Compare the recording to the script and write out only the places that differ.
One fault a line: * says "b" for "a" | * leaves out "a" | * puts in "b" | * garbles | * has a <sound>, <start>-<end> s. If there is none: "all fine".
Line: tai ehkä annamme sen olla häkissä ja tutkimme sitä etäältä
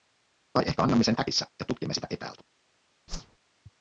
* leaves out "olla"
* has a whoosh, 3.1-3.4 s